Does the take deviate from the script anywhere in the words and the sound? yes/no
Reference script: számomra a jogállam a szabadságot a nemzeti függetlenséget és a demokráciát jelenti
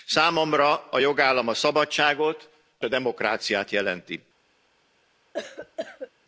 yes